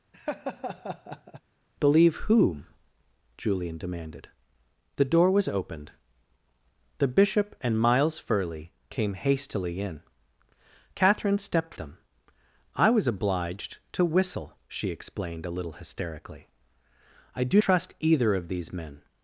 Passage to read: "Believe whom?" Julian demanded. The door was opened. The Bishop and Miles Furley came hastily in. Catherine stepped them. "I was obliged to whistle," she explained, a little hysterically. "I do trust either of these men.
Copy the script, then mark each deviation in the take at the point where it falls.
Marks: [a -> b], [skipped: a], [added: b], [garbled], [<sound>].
[laugh] "Believe whom?" Julian demanded. The door was opened. The Bishop and Miles Furley came hastily in. Catherine stepped them. "I was obliged to whistle," she explained, a little hysterically. "I do trust either of these men.